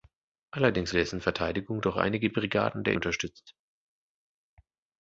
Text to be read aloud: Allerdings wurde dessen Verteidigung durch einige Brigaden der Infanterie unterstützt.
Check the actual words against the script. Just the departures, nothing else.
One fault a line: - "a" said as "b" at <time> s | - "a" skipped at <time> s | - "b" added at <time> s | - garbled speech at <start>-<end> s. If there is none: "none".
- "wurde" skipped at 0.9 s
- "Infanterie" skipped at 3.0 s